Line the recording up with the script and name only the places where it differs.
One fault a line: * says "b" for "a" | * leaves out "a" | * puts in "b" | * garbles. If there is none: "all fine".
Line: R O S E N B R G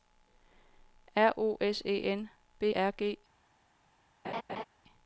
all fine